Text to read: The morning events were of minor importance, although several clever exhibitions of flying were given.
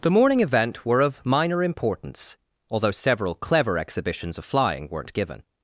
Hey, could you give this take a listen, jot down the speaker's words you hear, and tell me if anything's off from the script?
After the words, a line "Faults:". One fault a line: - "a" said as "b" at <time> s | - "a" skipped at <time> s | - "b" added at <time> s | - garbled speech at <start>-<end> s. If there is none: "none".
The morning event were of minor importance, although several clever exhibitions of flying weren't given.
Faults:
- "events" said as "event" at 0.4 s
- "were" said as "weren't" at 4.9 s